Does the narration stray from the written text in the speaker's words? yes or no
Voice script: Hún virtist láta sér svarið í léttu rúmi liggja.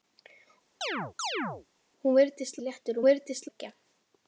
yes